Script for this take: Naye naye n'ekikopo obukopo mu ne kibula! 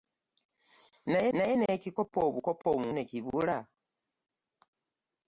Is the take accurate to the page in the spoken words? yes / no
yes